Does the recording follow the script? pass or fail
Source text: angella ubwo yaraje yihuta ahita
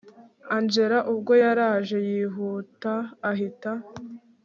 pass